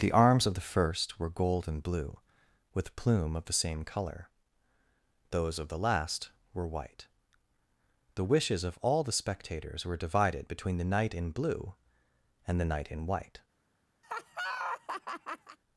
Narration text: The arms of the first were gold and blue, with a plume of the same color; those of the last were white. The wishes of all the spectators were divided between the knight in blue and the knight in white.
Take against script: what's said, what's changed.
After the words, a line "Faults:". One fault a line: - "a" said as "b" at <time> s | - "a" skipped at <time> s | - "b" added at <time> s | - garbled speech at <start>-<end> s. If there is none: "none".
The arms of the first were gold and blue, with plume of the same color; those of the last were white. The wishes of all the spectators were divided between the knight in blue and the knight in white.
Faults:
- "a" skipped at 3.0 s